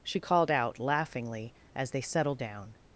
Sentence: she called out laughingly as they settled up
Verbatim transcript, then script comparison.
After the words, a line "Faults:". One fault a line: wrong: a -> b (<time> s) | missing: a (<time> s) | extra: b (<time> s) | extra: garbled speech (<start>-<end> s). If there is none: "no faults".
she called out laughingly as they settled down
Faults:
wrong: up -> down (2.4 s)